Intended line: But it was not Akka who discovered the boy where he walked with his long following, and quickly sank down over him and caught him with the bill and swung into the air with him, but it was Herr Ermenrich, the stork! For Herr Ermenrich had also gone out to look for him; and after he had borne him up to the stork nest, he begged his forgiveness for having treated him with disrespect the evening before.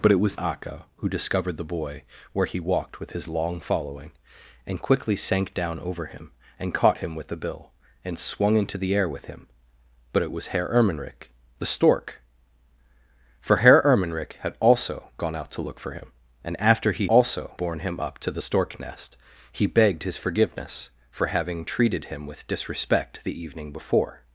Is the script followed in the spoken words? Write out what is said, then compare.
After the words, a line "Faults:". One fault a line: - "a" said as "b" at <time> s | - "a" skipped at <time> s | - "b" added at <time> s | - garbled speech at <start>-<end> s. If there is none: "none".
But it was Akka who discovered the boy where he walked with his long following, and quickly sank down over him and caught him with the bill and swung into the air with him, but it was Herr Ermenrich, the stork! For Herr Ermenrich had also gone out to look for him; and after he also borne him up to the stork nest, he begged his forgiveness for having treated him with disrespect the evening before.
Faults:
- "not" skipped at 0.4 s
- "had" said as "also" at 17.1 s